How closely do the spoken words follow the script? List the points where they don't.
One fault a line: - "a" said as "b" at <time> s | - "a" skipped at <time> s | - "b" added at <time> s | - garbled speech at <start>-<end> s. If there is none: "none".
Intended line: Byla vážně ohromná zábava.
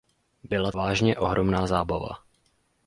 none